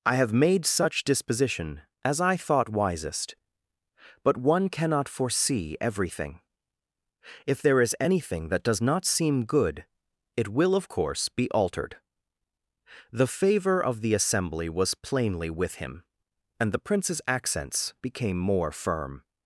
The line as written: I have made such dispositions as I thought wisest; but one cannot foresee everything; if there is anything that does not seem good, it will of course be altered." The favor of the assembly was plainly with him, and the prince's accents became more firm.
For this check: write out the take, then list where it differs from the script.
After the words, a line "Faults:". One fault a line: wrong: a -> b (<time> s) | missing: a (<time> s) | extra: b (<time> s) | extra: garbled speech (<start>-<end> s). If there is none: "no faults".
I have made such disposition as I thought wisest; but one cannot foresee everything; if there is anything that does not seem good, it will of course be altered." The favor of the assembly was plainly with him, and the prince's accents became more firm.
Faults:
wrong: dispositions -> disposition (1.0 s)